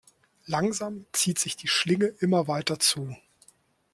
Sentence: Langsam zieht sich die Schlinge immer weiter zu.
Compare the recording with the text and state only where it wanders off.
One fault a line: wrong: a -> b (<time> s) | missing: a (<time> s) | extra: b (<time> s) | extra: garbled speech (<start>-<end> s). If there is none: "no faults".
no faults